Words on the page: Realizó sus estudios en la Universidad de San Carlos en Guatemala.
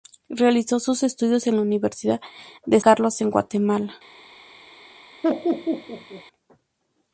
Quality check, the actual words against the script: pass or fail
fail